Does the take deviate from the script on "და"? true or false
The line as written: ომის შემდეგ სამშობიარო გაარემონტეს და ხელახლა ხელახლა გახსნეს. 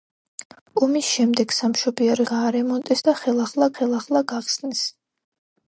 false